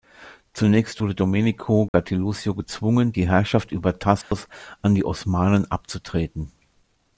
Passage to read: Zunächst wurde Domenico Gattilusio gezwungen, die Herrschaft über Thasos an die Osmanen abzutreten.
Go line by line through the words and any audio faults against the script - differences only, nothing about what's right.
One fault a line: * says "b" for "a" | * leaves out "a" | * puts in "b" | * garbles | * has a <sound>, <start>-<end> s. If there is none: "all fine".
* has a dropout, 1.9-1.9 s
* has a dropout, 4.2-4.3 s